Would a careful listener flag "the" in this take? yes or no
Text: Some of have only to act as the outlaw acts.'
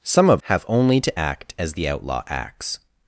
no